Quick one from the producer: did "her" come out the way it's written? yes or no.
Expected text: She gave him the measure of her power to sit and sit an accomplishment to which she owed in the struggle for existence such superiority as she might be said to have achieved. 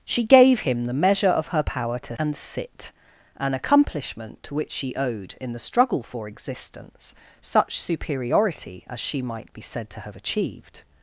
yes